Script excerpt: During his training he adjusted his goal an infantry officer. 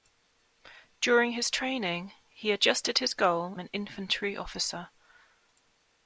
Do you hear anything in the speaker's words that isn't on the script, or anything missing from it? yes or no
no